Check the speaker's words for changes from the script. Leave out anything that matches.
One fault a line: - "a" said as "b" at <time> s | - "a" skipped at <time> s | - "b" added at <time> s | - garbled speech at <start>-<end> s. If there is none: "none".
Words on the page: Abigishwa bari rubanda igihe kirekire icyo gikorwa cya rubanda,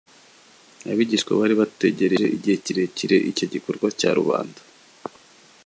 - "rubanda" said as "bategereje" at 1.6 s